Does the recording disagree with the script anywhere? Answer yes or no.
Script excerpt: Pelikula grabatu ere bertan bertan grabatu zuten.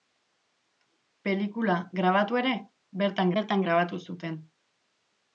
no